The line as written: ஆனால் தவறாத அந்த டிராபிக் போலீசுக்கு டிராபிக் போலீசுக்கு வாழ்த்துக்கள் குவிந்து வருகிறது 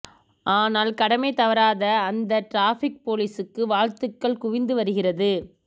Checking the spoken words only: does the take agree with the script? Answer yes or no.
no